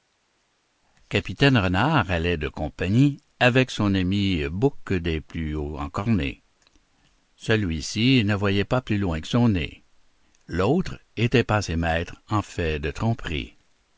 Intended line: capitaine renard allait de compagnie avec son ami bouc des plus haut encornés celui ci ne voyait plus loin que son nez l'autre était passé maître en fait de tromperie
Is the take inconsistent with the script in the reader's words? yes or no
yes